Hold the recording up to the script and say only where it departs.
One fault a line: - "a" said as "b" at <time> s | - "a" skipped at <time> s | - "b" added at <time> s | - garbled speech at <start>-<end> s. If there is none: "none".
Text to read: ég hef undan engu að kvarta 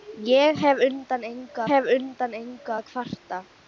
- "hef undan engu" added at 1.7 s